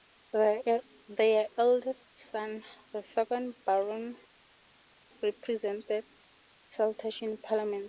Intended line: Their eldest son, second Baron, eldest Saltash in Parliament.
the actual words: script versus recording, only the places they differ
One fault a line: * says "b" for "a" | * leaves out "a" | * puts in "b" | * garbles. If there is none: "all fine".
* puts in "the"
* says "represented" for "eldest"